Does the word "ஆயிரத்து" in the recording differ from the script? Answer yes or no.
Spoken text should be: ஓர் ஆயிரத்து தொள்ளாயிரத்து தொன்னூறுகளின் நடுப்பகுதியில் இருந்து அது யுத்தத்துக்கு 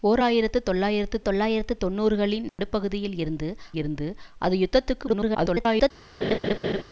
no